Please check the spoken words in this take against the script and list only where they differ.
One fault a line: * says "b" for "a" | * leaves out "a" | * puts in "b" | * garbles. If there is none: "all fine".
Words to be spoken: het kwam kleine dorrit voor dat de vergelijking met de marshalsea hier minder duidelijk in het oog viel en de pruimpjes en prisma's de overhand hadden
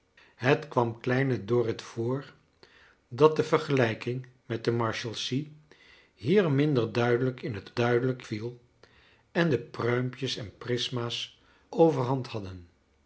* says "duidelijk" for "oog"
* leaves out "de"